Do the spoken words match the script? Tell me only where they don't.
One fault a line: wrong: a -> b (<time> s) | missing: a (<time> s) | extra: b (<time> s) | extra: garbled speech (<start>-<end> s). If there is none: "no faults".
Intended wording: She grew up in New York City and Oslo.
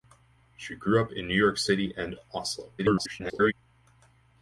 extra: garbled speech (2.8-3.5 s)